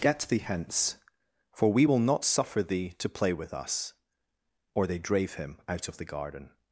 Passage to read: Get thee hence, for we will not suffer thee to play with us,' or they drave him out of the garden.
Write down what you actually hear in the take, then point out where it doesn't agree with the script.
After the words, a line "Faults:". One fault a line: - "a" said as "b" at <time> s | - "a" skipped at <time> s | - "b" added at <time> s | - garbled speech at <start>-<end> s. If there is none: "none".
Get thee hence, for we will not suffer thee to play with us,' or they drave him out of the garden.
Faults:
none